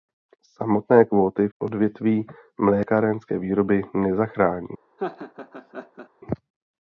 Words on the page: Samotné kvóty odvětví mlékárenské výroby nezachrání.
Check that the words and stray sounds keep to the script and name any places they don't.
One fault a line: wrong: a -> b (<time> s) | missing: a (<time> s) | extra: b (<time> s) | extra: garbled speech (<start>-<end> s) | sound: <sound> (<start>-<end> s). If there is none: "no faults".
sound: laugh (5.0-6.1 s)